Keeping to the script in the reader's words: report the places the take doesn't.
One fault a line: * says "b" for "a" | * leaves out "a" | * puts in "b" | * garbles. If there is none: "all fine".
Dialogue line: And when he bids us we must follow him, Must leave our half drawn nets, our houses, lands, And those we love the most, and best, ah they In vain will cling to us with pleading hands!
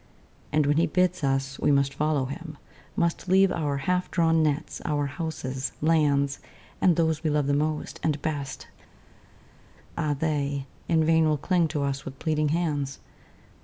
all fine